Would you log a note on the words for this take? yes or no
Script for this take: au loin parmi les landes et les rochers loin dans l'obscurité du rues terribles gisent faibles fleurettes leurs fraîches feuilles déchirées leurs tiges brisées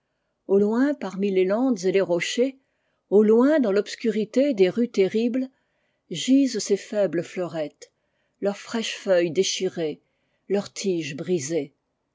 yes